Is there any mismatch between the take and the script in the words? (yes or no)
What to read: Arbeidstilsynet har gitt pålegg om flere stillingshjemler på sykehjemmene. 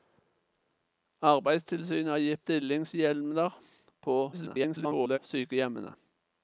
yes